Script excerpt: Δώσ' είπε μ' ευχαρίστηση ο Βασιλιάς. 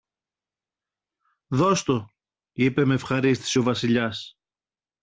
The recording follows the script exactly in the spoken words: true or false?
false